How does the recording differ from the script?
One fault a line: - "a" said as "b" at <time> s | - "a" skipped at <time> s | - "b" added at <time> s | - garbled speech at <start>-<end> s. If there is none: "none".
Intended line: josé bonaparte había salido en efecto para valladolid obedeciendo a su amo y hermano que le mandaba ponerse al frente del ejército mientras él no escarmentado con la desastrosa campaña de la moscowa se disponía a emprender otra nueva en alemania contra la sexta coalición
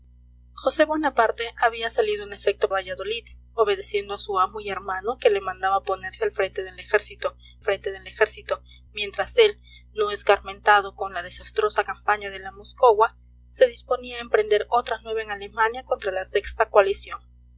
- "para" skipped at 2.7 s
- "frente del ejército" added at 7.6 s